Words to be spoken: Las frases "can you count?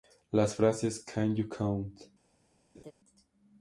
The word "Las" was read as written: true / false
true